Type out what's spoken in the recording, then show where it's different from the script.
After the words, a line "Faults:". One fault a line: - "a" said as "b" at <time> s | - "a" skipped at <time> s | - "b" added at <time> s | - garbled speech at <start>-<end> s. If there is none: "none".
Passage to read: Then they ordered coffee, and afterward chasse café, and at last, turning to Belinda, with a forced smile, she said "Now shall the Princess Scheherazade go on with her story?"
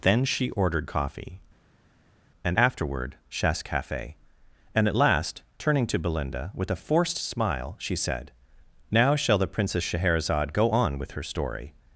Then she ordered coffee, and afterward chasse café, and at last, turning to Belinda, with a forced smile, she said "Now shall the Princess Scheherazade go on with her story?"
Faults:
- "they" said as "she" at 0.2 s